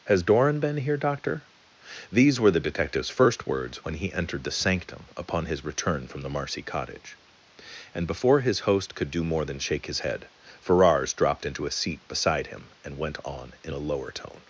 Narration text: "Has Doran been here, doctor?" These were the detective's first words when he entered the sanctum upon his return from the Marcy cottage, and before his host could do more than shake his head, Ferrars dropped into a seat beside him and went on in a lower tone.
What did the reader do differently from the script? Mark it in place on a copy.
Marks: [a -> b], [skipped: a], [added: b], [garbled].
"Has Doran been here, doctor?" These were the detective's first words when he entered the sanctum upon his return from the Marcy cottage, and before his host could do more than shake his head, Ferrars dropped into a seat beside him and went on in a lower tone.